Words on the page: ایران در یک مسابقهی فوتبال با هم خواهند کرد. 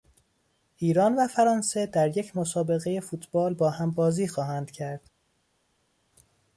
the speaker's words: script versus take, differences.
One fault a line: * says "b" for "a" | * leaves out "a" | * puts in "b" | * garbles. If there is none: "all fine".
* puts in "و فرانسه"
* puts in "بازی"